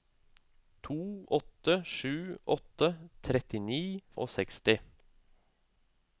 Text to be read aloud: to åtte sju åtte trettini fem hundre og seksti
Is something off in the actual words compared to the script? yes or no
yes